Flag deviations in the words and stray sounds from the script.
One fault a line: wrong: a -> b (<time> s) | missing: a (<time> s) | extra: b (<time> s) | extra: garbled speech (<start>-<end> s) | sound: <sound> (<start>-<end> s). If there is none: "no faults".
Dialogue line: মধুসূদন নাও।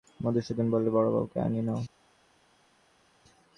extra: বললে বড়োবউকে আনিয়ে (0.7 s)